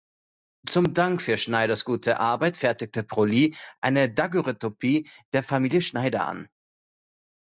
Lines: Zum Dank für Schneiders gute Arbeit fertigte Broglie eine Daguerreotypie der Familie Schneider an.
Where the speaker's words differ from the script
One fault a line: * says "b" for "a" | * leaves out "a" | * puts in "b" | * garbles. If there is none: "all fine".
all fine